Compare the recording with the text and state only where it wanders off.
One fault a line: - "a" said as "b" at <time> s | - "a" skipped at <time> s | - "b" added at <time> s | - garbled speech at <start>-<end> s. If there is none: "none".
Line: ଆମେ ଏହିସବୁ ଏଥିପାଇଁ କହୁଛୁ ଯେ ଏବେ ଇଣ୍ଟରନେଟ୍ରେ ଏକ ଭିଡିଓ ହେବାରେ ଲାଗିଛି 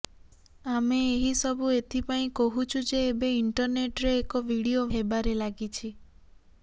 none